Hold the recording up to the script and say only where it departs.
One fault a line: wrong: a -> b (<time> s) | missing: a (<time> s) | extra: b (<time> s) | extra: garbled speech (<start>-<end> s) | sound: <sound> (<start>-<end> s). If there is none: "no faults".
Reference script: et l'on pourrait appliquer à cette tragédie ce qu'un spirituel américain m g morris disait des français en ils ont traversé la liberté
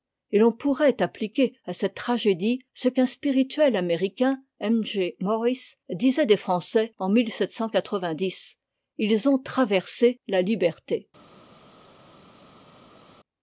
no faults